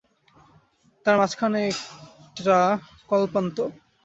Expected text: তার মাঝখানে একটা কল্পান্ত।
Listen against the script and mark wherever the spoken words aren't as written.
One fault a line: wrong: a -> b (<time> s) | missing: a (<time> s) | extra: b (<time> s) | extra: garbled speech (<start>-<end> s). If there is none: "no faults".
no faults